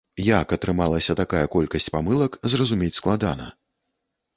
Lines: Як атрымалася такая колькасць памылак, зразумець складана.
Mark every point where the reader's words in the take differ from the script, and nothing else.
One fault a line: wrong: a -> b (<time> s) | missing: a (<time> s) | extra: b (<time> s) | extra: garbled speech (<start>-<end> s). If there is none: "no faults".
no faults